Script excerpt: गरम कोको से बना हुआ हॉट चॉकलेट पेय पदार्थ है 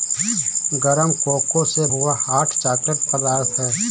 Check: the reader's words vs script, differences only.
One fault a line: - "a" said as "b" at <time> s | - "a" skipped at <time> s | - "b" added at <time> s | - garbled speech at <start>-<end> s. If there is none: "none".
- "बना" skipped at 1.9 s
- "पेय" skipped at 3.0 s